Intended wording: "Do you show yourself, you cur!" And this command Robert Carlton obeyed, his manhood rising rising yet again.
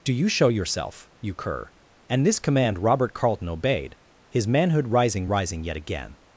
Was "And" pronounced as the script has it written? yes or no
yes